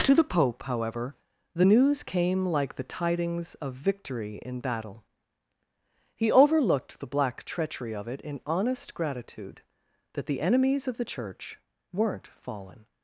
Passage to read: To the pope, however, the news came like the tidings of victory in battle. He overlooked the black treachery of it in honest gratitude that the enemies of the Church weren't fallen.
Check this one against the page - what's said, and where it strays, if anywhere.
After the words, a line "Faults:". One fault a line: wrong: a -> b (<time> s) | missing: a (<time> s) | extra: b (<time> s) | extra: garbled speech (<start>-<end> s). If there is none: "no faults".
To the pope, however, the news came like the tidings of victory in battle. He overlooked the black treachery of it in honest gratitude that the enemies of the Church weren't fallen.
Faults:
no faults